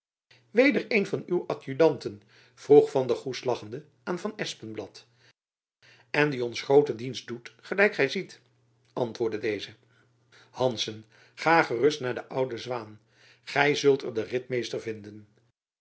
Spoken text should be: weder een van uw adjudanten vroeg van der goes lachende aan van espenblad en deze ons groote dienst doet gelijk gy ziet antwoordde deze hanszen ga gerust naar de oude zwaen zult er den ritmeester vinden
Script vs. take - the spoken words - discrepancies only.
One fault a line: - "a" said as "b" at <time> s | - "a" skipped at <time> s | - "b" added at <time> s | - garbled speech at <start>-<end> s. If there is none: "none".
- "deze" said as "die" at 6.3 s
- "gy" added at 13.4 s